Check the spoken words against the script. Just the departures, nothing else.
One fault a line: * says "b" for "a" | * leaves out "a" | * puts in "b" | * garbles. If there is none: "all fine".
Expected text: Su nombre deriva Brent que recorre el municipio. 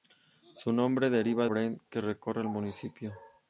all fine